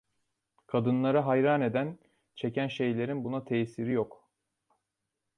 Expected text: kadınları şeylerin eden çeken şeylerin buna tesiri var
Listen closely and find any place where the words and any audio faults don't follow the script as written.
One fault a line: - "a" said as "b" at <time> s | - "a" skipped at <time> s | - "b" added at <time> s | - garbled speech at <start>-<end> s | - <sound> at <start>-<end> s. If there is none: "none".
- "şeylerin" said as "hayran" at 1.2 s
- "var" said as "yok" at 3.9 s